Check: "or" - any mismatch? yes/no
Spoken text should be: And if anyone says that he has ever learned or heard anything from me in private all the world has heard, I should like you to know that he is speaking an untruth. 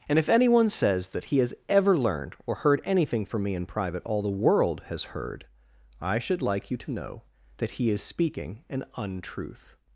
no